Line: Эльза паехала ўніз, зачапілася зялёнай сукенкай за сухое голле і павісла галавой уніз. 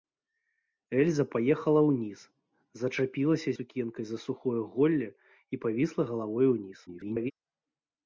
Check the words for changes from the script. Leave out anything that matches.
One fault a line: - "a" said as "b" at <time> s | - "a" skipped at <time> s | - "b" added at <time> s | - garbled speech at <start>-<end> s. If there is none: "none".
- "зялёнай" skipped at 3.5 s
- garbled speech at 6.9-7.3 s